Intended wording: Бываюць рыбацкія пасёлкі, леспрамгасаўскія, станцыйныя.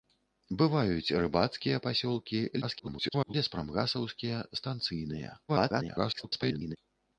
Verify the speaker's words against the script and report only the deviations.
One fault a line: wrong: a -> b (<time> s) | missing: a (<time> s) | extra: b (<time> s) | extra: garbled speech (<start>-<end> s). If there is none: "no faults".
extra: garbled speech (2.6-3.3 s)
extra: garbled speech (5.5-6.8 s)